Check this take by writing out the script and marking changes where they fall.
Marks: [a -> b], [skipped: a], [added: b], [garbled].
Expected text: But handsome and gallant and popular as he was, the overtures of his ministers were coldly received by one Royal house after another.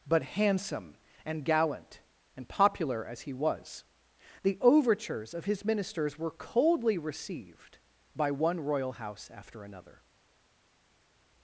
But handsome and gallant and popular as he was, the overtures of his ministers were coldly received by one Royal house after another.